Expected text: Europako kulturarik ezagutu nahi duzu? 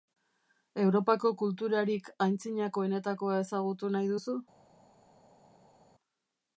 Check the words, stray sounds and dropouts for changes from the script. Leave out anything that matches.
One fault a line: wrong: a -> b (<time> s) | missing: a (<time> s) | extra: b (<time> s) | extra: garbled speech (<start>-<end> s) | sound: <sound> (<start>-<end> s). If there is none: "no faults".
extra: antzinakoenetakoa (2.3 s)